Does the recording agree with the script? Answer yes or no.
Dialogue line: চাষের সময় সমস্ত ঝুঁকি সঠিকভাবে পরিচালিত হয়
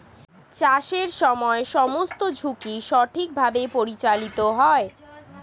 yes